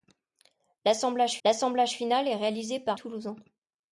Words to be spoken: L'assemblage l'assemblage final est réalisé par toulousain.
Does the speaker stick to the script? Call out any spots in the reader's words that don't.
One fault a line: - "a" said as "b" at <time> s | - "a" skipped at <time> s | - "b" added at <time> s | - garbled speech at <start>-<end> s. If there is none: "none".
none